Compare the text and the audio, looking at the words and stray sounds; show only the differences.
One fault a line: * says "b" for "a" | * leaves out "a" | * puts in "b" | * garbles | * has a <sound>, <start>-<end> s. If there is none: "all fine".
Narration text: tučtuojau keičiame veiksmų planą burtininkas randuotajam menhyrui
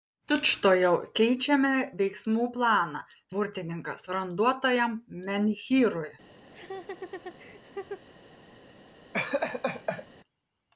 * has a laugh, 6.5-8.1 s
* has a laugh, 9.1-10.1 s